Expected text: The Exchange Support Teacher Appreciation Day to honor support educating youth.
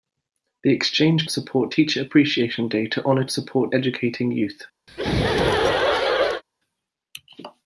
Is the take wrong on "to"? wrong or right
right